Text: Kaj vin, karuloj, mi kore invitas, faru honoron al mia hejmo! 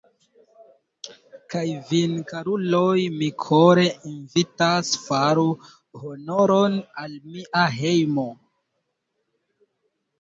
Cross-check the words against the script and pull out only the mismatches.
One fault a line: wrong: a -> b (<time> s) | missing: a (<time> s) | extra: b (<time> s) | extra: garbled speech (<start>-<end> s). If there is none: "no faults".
no faults